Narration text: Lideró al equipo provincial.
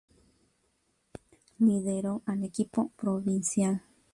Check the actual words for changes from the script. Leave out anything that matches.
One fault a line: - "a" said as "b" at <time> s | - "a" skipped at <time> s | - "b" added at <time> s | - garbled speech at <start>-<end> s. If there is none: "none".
none